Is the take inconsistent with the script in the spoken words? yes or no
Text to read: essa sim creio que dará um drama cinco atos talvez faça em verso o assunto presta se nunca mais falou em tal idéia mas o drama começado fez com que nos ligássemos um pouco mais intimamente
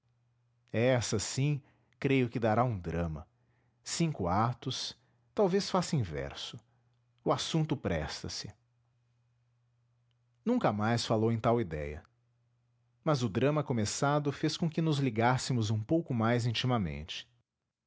no